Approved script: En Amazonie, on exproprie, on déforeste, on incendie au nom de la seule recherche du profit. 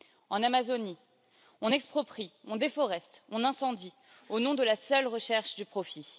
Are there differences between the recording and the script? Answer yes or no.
no